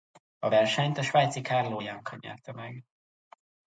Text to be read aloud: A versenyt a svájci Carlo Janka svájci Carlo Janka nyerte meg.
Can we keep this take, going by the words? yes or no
no